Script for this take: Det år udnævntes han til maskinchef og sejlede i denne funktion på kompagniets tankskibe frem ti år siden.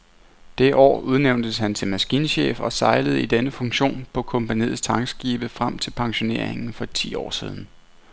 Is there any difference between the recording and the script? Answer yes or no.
yes